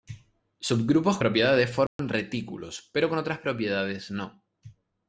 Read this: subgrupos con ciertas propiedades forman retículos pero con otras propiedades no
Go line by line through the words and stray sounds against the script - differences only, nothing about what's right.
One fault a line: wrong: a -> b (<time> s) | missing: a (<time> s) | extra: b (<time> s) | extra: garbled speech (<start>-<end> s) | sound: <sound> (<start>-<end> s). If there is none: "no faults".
missing: con ciertas (1.2 s)
sound: dropout (1.9-2.0 s)